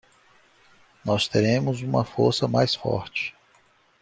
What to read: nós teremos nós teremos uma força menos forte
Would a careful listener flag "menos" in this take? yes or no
yes